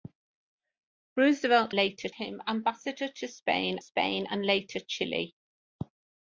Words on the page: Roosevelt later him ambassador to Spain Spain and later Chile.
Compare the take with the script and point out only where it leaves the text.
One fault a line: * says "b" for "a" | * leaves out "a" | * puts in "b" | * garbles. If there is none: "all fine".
all fine